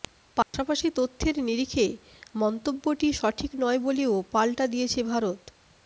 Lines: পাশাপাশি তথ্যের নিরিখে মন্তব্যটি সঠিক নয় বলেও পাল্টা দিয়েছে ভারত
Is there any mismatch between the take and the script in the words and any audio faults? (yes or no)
yes